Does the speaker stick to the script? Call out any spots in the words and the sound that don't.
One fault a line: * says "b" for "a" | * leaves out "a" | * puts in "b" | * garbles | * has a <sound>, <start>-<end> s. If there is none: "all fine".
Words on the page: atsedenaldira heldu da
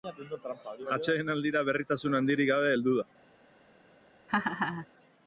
* puts in "berritasun handirik gabe"
* has a laugh, 4.3-4.9 s